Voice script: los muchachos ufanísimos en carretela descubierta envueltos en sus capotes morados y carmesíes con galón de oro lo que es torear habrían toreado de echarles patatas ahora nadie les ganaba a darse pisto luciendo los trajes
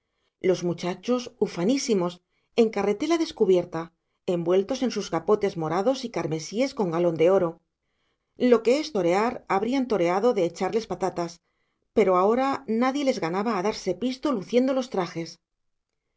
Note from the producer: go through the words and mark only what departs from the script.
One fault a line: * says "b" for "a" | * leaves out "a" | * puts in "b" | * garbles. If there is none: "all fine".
* puts in "pero"